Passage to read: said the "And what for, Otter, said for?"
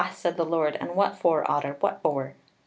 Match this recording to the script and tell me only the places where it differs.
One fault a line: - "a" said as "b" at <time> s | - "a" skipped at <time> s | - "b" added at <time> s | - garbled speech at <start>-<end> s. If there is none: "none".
- "Lord" added at 0.5 s
- "said" said as "what" at 1.8 s